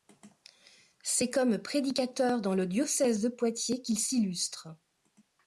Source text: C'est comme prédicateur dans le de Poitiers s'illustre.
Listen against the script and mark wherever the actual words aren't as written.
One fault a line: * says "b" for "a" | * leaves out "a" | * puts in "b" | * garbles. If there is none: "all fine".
* puts in "diocèse"
* puts in "qu'il"